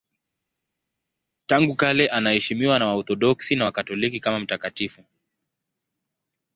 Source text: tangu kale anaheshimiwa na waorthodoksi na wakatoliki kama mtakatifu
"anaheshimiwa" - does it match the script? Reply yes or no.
yes